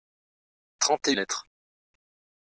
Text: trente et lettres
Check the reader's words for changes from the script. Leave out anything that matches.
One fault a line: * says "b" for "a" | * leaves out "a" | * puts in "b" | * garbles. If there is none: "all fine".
all fine